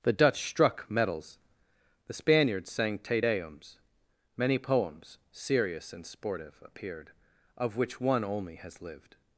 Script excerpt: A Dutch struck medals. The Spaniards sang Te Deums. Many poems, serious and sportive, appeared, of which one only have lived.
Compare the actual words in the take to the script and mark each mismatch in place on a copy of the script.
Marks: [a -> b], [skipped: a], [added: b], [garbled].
[A -> The] Dutch struck medals. The Spaniards sang Te Deums. Many poems, serious and sportive, appeared, of which one only [have -> has] lived.